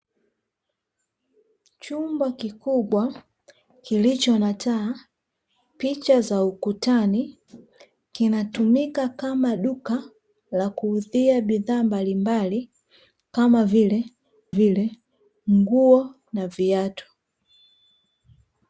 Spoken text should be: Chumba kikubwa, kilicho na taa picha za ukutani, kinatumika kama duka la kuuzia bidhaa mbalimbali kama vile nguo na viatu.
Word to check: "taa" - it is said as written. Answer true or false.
true